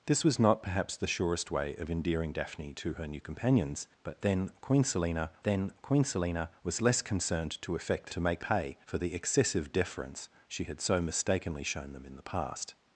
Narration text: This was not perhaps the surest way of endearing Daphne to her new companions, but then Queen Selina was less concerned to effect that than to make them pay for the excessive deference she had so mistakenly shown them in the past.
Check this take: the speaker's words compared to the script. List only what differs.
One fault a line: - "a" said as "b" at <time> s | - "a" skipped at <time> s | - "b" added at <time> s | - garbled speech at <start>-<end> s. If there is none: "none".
- "then Queen Selina" added at 5.4 s
- "that than" skipped at 8.1 s
- "them" skipped at 8.4 s